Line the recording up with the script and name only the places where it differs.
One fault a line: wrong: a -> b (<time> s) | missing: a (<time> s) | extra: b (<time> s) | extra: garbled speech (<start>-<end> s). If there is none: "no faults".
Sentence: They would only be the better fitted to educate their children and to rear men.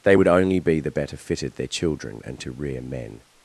missing: to educate (1.6 s)